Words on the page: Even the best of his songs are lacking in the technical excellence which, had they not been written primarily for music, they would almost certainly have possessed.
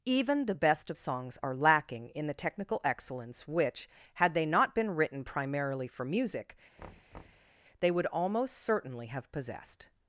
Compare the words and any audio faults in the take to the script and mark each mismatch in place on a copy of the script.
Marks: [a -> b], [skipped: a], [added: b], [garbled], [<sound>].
Even the best of [skipped: his] songs are lacking in the technical excellence which, had they not been written primarily for music, [thud] they would almost certainly have possessed.